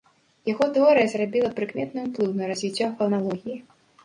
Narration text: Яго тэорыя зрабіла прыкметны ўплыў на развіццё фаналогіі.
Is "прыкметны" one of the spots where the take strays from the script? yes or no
no